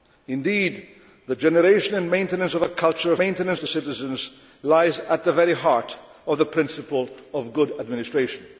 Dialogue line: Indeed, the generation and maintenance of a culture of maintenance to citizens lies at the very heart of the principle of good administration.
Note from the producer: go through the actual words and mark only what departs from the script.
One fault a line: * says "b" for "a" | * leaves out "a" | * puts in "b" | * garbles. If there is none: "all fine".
all fine